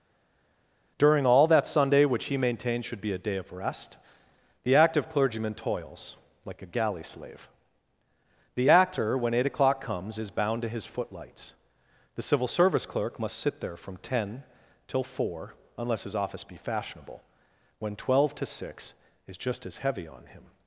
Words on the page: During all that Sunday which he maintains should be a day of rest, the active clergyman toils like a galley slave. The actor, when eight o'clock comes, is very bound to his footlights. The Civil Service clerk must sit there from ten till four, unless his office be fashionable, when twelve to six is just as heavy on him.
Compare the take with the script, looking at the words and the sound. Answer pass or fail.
fail